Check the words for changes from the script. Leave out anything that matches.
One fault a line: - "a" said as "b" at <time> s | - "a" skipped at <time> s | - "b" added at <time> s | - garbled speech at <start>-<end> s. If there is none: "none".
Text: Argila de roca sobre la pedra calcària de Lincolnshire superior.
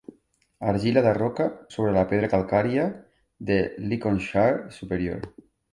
none